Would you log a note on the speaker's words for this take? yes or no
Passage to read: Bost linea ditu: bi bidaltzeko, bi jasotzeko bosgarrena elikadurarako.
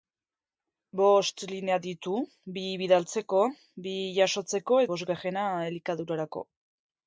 no